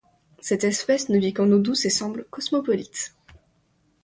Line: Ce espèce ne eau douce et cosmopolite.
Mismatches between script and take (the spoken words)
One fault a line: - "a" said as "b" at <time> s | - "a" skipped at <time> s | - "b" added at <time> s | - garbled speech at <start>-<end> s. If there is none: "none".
- "Ce" said as "Cette" at 0.4 s
- "vit qu'en" added at 1.2 s
- "semble" added at 1.9 s